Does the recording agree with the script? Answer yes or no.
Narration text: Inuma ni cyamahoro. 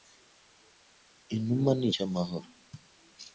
yes